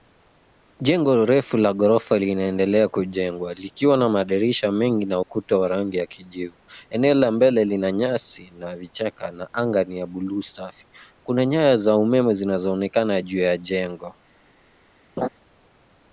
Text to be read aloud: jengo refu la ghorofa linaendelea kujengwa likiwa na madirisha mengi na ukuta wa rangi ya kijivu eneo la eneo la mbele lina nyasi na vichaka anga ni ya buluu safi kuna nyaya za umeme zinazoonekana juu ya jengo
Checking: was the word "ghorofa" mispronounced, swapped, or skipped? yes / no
no